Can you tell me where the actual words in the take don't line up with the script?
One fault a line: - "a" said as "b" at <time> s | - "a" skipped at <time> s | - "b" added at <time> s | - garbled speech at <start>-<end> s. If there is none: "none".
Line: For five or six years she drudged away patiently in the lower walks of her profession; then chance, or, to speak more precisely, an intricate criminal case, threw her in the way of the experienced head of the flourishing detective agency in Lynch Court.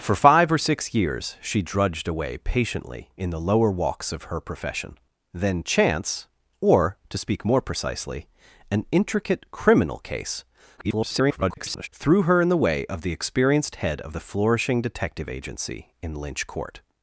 - garbled speech at 10.8-11.9 s